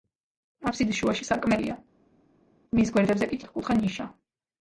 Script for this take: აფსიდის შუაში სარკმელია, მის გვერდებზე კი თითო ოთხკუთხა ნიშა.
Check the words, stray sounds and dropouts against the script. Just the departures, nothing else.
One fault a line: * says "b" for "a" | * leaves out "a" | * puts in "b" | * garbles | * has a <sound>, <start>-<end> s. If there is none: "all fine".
* leaves out "თითო"